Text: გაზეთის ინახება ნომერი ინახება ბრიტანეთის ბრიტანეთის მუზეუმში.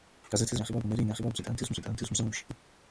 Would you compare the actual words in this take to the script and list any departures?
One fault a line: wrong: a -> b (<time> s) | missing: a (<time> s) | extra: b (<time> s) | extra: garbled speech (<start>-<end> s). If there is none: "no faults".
no faults